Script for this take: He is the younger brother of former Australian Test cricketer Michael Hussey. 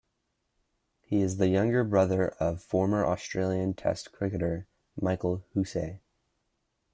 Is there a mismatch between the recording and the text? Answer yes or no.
no